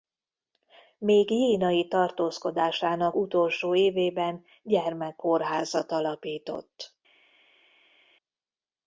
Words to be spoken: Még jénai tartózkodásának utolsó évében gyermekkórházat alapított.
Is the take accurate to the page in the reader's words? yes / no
yes